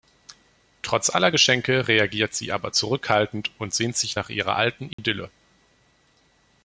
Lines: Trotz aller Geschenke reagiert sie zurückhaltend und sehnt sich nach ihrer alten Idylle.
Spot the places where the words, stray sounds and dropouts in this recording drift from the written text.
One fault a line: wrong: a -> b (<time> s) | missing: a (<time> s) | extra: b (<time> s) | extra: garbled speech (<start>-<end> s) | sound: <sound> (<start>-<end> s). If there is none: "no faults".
extra: aber (2.5 s)
sound: dropout (4.9-5.0 s)